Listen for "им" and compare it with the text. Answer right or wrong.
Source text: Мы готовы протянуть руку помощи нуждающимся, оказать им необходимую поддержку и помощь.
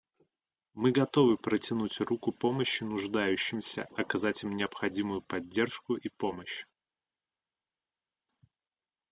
right